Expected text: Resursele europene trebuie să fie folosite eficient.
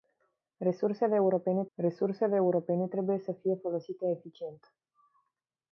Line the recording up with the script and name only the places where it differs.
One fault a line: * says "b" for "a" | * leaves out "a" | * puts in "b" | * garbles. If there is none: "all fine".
* puts in "resursele europene"